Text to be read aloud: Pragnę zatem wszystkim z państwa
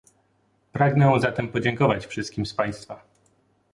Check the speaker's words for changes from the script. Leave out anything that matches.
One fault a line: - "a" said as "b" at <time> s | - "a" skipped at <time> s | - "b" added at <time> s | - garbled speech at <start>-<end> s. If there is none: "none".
- "podziękować" added at 1.5 s